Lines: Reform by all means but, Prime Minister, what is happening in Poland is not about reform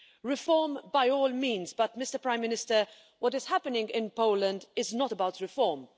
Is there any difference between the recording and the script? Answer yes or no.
no